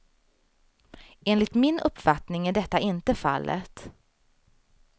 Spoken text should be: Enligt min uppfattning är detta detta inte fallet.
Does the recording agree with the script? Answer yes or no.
no